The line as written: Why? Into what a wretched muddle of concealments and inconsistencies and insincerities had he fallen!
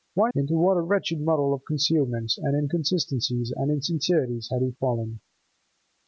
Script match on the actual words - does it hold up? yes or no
yes